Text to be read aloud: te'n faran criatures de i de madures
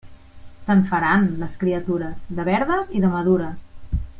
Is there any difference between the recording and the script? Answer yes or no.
yes